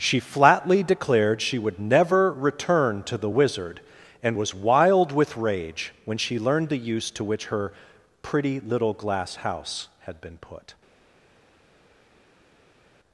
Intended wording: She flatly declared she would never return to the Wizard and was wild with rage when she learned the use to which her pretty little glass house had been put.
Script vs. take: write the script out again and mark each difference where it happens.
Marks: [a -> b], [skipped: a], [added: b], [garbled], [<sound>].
She flatly declared she would never return to the Wizard and was wild with rage when she learned the use to which her pretty little glass house had been put.